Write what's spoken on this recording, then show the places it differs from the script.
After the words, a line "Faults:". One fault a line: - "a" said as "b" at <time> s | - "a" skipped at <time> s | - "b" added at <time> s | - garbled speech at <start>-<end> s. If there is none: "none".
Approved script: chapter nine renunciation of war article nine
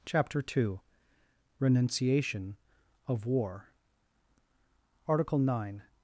chapter two renunciation of war article nine
Faults:
- "nine" said as "two" at 0.4 s